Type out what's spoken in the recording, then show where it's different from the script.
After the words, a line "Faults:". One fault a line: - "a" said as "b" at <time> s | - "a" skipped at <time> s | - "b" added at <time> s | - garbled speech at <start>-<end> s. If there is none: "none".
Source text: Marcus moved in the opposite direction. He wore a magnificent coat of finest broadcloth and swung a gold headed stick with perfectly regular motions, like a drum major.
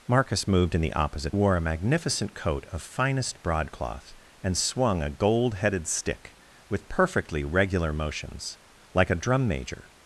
Marcus moved in the opposite wore a magnificent coat of finest broadcloth and swung a gold headed stick with perfectly regular motions, like a drum major.
Faults:
- "direction He" skipped at 1.3 s